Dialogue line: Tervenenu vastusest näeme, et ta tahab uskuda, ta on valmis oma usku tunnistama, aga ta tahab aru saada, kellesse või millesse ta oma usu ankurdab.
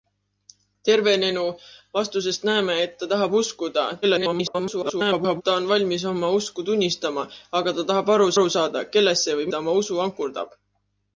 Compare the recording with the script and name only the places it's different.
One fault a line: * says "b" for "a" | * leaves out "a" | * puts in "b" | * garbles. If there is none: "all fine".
* garbles
* puts in "aru"
* leaves out "millesse"